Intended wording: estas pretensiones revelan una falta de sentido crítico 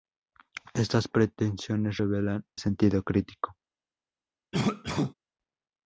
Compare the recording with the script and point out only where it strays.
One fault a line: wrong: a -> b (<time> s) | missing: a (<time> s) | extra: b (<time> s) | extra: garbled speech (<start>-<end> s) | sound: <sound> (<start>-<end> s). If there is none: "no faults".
missing: una falta de (2.4 s)
sound: cough (4.5-5.1 s)